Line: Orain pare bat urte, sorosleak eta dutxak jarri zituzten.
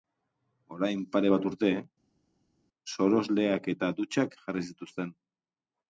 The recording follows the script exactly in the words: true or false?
true